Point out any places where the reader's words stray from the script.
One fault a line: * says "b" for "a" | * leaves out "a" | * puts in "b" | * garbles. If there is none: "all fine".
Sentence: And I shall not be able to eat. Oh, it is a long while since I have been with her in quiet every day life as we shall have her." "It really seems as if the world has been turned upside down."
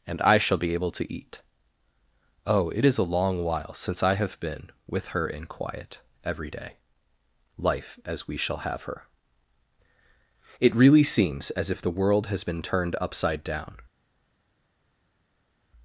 * leaves out "not"